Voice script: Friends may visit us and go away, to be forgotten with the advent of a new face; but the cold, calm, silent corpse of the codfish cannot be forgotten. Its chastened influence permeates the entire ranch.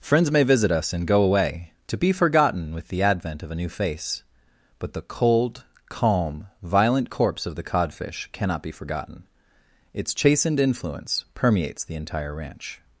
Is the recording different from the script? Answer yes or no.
yes